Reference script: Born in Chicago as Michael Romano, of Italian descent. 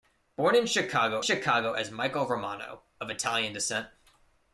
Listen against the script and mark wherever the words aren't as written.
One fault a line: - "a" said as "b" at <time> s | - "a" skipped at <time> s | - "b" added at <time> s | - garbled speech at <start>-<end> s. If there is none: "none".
- "Chicago" added at 1.2 s